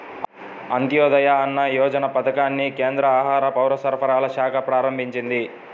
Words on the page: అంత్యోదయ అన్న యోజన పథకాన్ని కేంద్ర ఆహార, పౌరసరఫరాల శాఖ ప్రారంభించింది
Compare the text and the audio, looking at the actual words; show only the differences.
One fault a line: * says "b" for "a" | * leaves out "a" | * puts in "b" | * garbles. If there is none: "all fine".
all fine